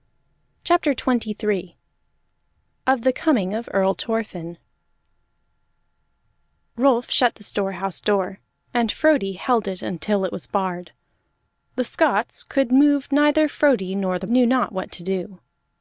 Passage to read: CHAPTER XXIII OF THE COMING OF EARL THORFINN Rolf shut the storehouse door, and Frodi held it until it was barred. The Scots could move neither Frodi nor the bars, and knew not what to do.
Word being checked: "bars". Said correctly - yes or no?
no